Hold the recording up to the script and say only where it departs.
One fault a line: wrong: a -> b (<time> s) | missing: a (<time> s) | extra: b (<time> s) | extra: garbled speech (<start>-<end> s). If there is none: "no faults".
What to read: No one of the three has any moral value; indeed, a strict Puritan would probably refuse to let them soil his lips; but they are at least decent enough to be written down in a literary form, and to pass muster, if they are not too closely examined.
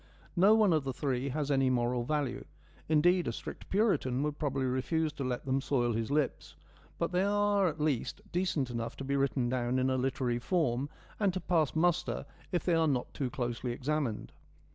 no faults